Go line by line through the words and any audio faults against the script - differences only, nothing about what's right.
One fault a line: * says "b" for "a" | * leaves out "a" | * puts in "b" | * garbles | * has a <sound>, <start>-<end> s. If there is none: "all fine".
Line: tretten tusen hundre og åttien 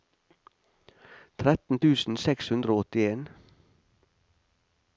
* puts in "seks"